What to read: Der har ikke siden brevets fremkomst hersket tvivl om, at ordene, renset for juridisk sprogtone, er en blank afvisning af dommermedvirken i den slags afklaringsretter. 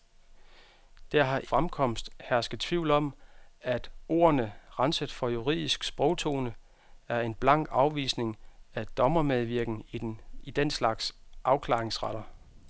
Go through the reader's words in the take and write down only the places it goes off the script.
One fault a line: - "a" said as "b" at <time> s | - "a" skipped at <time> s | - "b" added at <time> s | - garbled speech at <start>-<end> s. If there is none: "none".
- "ikke siden brevets" skipped at 1.4 s